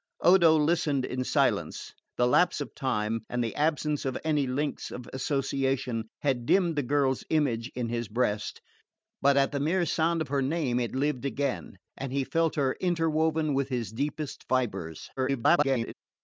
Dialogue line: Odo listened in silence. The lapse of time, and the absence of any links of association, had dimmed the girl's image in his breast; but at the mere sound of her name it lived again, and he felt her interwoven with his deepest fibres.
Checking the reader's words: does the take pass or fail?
fail